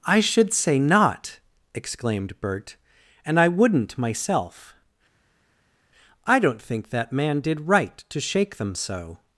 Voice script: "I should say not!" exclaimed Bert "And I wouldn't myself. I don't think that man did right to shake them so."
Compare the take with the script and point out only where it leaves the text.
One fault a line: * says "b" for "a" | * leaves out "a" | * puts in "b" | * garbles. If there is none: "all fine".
all fine